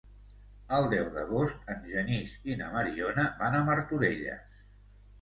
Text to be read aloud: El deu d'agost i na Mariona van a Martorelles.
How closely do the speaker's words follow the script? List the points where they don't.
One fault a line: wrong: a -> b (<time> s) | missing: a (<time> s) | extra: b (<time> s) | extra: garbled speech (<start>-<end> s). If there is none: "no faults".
extra: en Genís (1.8 s)